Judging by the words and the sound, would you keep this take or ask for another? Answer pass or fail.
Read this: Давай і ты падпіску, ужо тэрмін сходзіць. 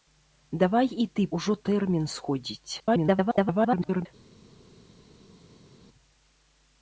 fail